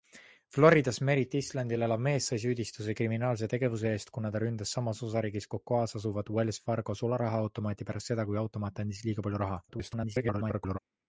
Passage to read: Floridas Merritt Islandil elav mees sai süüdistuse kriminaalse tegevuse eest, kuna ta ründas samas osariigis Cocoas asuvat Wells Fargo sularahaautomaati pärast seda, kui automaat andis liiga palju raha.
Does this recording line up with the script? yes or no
no